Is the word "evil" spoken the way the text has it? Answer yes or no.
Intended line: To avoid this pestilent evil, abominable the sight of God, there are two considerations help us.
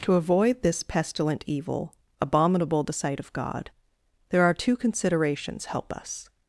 yes